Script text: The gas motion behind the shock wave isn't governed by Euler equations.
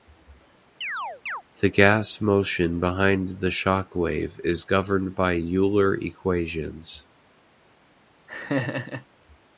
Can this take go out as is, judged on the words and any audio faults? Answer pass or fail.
fail